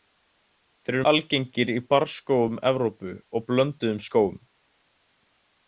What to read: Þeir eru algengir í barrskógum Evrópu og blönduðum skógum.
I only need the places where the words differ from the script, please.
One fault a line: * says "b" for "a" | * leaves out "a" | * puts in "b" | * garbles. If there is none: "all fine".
all fine